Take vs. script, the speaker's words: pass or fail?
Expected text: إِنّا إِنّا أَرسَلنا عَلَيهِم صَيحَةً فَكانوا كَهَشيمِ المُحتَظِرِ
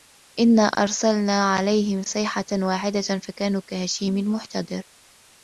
fail